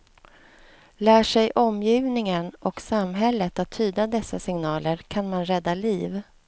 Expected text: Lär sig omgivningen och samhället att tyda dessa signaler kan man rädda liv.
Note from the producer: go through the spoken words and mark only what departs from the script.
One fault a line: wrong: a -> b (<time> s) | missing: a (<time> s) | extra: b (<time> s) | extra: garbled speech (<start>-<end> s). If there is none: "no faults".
no faults